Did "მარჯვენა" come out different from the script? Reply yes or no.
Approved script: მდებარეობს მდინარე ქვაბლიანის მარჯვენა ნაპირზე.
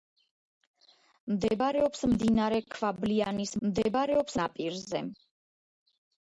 yes